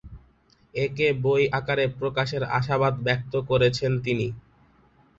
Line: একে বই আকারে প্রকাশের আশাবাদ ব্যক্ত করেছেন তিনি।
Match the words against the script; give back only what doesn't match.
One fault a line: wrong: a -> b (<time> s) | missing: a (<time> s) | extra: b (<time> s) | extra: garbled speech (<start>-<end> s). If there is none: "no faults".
no faults